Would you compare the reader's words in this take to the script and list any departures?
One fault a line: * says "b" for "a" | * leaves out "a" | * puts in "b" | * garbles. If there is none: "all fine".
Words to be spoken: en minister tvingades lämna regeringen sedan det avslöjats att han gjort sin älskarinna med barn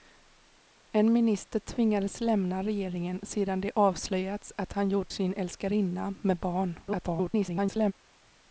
* garbles